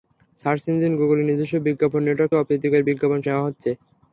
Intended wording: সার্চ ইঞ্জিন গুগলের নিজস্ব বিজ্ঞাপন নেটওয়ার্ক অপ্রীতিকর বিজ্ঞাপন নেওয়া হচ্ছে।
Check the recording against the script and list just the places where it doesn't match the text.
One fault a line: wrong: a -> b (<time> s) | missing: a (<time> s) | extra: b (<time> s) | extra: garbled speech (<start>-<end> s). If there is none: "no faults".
no faults